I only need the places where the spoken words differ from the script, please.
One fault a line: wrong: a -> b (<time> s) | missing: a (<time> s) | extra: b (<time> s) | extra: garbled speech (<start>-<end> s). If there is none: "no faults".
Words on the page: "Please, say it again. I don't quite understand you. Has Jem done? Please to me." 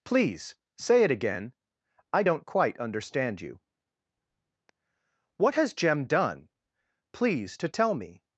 extra: What (5.3 s)
extra: tell (7.7 s)